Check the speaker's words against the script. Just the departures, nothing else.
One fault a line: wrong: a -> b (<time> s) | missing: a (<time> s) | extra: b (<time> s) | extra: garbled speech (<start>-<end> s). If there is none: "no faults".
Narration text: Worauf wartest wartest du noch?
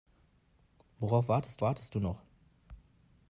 no faults